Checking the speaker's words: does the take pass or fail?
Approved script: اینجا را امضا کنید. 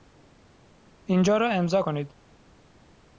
pass